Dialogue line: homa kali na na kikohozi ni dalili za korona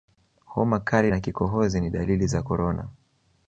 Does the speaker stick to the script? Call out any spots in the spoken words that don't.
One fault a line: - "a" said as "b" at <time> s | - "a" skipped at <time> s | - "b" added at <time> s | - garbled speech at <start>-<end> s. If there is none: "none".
- "na" skipped at 1.2 s